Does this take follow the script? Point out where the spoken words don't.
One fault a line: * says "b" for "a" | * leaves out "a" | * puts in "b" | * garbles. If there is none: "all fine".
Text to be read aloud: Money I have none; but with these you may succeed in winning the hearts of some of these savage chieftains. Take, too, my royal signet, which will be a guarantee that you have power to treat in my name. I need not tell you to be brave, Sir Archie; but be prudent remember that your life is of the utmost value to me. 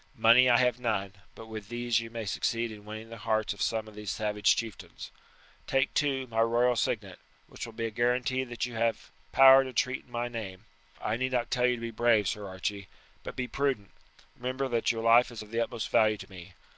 all fine